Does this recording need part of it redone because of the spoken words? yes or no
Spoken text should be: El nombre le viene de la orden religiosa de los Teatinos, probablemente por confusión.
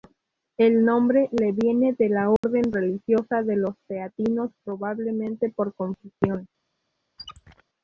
no